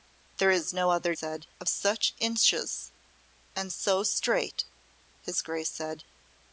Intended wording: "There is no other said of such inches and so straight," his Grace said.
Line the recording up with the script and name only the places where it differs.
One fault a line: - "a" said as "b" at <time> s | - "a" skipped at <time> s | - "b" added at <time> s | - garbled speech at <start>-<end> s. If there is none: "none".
none